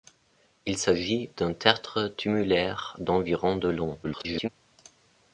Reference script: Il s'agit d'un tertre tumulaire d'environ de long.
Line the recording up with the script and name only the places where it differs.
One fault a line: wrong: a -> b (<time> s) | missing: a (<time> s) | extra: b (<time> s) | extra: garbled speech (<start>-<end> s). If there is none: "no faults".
extra: garbled speech (4.0-4.5 s)